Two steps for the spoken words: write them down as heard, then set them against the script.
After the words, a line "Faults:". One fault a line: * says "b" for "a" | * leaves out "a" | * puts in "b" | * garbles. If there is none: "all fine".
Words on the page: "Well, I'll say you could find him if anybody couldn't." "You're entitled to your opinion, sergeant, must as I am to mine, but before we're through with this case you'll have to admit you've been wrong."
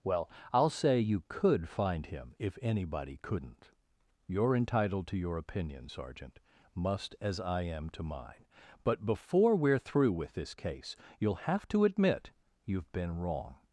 "Well, I'll say you could find him if anybody couldn't." "You're entitled to your opinion, sergeant, must as I am to mine, but before we're through with this case you'll have to admit you've been wrong."
Faults:
all fine